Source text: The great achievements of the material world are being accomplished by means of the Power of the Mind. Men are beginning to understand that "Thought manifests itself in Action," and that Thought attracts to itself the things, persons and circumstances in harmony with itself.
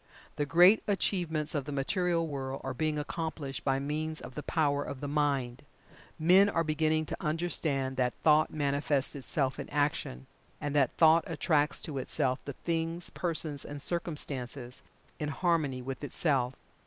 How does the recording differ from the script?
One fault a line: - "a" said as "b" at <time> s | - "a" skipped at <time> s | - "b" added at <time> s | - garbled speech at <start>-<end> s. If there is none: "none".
none